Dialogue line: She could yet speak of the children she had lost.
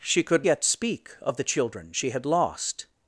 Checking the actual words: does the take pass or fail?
pass